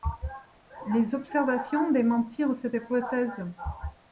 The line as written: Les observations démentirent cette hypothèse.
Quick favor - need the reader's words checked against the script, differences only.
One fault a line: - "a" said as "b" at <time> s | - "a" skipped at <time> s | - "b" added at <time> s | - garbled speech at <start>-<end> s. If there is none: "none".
none